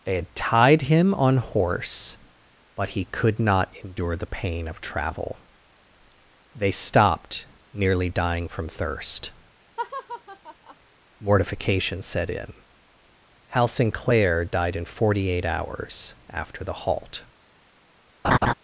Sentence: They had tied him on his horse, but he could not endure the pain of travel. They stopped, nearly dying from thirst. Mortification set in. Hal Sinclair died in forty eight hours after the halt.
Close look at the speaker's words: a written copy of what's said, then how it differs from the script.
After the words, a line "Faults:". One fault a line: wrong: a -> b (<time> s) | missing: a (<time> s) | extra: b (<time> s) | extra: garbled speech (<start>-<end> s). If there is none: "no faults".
They had tied him on horse, but he could not endure the pain of travel. They stopped, nearly dying from thirst. Mortification set in. Hal Sinclair died in forty eight hours after the halt.
Faults:
missing: his (1.4 s)